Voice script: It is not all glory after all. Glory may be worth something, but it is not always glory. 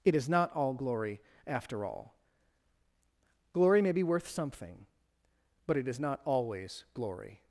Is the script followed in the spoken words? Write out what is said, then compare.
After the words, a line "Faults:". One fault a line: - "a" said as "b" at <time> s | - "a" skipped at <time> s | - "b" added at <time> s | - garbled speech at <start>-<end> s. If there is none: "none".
It is not all glory after all. Glory may be worth something, but it is not always glory.
Faults:
none